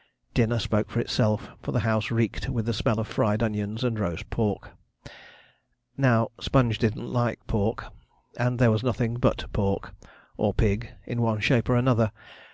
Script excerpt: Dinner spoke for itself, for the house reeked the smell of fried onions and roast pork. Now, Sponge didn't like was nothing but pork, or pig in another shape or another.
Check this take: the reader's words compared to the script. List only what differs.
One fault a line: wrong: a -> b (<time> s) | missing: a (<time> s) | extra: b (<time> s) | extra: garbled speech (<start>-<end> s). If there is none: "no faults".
extra: with (2.5 s)
extra: pork and there (7.5 s)
wrong: another -> one (11.2 s)